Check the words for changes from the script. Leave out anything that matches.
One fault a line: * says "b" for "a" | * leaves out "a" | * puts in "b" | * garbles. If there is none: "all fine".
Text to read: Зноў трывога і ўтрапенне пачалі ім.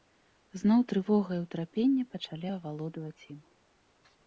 * puts in "авалодваць"